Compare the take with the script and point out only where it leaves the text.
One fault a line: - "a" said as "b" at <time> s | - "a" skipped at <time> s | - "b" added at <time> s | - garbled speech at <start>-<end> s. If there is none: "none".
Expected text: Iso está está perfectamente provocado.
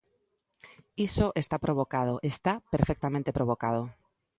- "provocado" added at 1.6 s